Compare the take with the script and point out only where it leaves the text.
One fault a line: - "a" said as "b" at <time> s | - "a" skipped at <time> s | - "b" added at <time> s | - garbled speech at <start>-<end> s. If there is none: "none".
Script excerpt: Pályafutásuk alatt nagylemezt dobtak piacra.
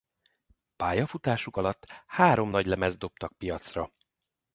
- "három" added at 2.1 s